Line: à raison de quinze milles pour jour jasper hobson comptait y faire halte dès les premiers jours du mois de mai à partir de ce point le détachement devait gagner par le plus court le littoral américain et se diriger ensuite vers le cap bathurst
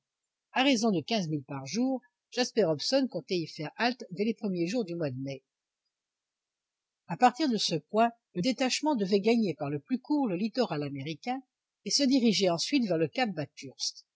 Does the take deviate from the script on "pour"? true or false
true